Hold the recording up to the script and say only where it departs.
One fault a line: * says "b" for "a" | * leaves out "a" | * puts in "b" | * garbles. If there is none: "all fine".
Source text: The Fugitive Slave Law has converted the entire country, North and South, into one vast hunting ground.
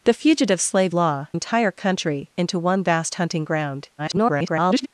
* leaves out "has converted the"
* leaves out "North and South"
* garbles